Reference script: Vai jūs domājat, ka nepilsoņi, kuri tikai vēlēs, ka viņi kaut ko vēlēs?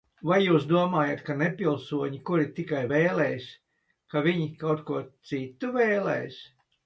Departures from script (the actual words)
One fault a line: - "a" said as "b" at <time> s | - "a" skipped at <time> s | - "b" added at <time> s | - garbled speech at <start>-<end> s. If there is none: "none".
- "citu" added at 5.3 s